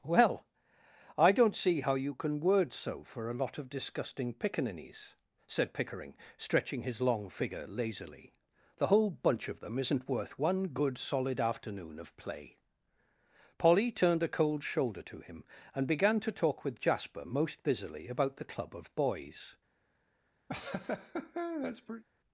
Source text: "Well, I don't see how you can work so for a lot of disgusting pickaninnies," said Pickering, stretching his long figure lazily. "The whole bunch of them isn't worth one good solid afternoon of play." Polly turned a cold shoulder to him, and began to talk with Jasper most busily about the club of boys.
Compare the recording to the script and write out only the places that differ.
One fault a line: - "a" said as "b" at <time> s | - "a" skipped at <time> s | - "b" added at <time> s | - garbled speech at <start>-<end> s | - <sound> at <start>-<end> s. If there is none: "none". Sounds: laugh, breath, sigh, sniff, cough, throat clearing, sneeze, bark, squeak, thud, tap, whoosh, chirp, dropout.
- "work" said as "word" at 2.4 s
- laugh at 20.5-22.0 s